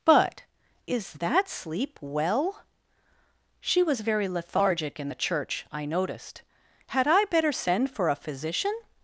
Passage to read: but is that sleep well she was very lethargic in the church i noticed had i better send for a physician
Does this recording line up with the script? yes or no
yes